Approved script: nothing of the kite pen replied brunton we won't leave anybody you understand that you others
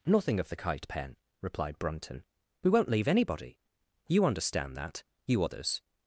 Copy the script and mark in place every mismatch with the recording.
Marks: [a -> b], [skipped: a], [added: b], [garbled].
nothing of the kite pen replied brunton we won't leave anybody you understand that you others